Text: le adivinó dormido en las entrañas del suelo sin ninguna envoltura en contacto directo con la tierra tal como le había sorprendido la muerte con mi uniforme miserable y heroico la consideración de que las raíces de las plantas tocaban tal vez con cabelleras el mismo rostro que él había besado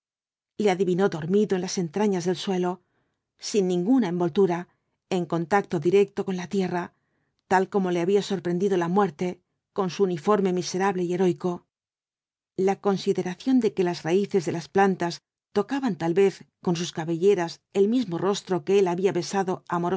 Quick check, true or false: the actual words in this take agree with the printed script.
false